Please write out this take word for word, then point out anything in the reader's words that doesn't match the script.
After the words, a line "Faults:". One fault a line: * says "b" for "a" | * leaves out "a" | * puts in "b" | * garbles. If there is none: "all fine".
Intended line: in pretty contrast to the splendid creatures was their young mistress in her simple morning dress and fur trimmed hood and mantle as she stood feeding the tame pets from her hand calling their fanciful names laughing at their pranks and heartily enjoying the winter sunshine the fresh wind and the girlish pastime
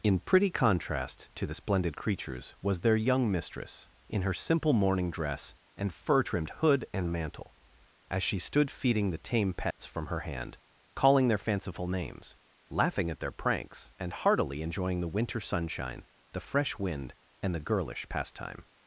in pretty contrast to the splendid creatures was their young mistress in her simple morning dress and fur trimmed hood and mantle as she stood feeding the tame pets from her hand calling their fanciful names laughing at their pranks and heartily enjoying the winter sunshine the fresh wind and the girlish pastime
Faults:
all fine